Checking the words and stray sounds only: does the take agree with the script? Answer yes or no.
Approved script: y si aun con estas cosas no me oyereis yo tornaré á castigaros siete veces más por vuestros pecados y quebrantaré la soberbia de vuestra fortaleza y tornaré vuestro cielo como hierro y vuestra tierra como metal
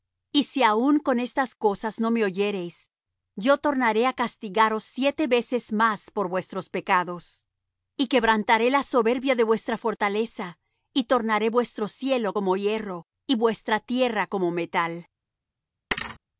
no